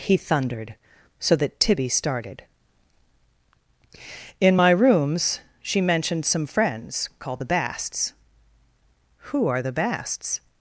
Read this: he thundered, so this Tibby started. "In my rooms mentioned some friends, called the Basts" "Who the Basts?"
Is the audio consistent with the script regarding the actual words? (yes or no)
no